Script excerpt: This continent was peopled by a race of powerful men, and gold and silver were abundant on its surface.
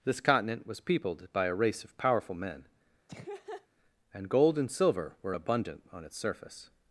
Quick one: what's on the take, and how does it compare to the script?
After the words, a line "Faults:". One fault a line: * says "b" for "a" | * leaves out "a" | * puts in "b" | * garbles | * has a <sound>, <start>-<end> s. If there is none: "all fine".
This continent was peopled by a race of powerful men, and gold and silver were abundant on its surface.
Faults:
* has a laugh, 3.1-3.7 s